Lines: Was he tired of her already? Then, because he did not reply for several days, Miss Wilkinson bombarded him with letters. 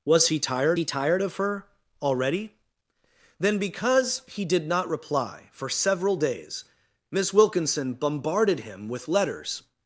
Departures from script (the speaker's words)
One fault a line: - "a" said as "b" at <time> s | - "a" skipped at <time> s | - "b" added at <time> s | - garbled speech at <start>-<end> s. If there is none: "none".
- "he tired" added at 0.8 s